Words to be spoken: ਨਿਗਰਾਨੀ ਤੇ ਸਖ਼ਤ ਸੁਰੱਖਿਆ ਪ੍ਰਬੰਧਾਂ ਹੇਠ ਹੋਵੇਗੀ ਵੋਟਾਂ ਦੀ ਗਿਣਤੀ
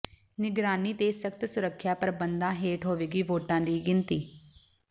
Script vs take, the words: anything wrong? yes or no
no